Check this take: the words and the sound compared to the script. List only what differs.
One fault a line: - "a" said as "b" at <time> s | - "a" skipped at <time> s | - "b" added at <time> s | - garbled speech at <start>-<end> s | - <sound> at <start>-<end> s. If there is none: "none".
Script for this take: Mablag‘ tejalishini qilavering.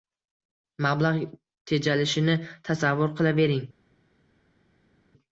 - "tasavvur" added at 2.7 s